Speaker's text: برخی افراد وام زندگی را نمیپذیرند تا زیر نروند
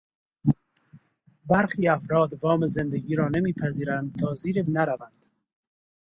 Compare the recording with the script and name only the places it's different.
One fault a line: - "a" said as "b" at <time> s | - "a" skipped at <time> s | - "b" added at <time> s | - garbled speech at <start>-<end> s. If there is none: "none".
none